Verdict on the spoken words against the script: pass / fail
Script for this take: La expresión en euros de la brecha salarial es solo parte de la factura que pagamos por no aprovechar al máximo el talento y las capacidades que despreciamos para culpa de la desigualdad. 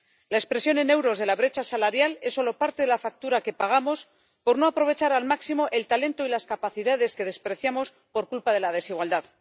fail